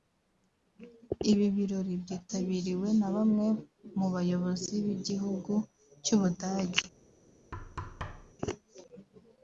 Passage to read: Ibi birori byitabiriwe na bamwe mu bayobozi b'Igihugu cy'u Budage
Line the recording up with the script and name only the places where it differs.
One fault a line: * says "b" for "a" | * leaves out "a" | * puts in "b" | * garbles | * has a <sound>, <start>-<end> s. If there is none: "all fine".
* has a thud, 7.5-8.3 s